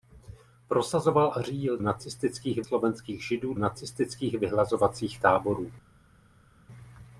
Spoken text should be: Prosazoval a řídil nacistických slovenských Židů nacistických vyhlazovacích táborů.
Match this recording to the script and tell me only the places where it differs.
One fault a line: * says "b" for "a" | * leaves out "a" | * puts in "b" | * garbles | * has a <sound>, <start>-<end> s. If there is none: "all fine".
all fine